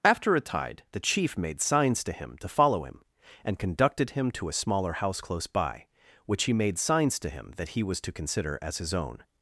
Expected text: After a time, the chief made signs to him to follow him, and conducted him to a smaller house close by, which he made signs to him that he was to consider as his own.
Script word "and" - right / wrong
right